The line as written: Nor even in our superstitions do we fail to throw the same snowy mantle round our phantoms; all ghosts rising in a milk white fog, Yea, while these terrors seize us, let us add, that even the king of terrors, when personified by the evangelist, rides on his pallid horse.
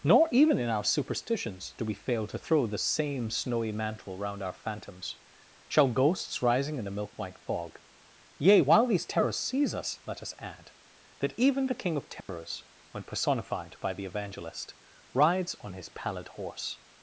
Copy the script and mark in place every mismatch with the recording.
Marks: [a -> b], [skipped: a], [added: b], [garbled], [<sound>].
Nor even in our superstitions do we fail to throw the same snowy mantle round our phantoms; [all -> shall] ghosts rising in a milk white fog, Yea, while these terrors seize us, let us add, that even the king of terrors, [dropout] when personified by the evangelist, rides on his pallid horse.